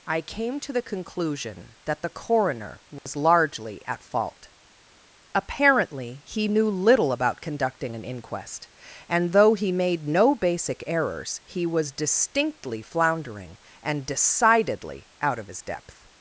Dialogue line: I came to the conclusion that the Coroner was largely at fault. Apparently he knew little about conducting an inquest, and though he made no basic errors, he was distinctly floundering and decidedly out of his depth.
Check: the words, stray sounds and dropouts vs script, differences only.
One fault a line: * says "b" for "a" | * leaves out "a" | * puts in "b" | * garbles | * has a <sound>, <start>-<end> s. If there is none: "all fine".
* has a dropout, 3.0-3.1 s